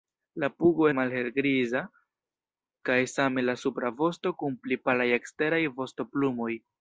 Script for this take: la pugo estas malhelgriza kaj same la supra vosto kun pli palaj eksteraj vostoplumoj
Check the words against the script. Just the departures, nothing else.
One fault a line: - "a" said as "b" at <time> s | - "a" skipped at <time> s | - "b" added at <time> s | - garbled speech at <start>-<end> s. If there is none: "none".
- "estas" skipped at 0.9 s